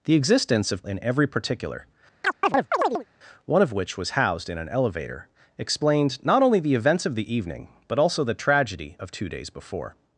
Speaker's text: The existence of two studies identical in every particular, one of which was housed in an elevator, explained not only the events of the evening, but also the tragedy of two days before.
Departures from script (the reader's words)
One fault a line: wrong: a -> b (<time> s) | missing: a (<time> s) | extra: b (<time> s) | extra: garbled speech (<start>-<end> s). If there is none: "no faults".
missing: two studies identical (0.8 s)